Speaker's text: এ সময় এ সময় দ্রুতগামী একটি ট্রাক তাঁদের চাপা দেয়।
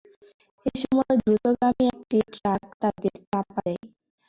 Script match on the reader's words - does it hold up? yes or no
no